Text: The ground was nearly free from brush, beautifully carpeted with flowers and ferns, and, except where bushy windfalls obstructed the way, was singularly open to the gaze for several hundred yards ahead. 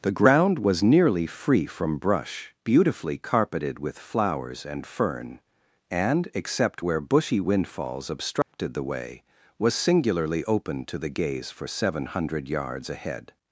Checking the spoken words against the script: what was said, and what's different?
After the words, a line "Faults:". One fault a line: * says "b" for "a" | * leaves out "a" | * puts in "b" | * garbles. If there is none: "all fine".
The ground was nearly free from brush, beautifully carpeted with flowers and fern, and, except where bushy windfalls obstructed the way, was singularly open to the gaze for seven hundred yards ahead.
Faults:
* says "fern" for "ferns"
* says "seven" for "several"